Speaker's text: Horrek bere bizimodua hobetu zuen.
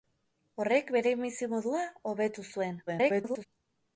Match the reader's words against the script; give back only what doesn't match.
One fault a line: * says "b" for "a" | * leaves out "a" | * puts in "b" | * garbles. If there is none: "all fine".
* garbles